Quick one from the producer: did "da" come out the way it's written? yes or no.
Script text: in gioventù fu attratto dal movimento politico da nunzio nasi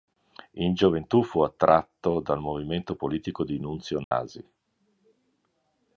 no